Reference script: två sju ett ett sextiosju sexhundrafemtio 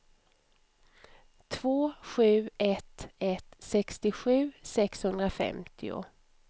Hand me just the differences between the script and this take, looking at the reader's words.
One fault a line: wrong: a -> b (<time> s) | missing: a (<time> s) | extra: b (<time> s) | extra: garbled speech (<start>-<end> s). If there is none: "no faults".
no faults